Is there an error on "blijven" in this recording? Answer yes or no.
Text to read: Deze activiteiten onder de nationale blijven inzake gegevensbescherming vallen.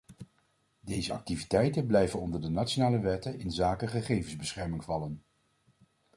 yes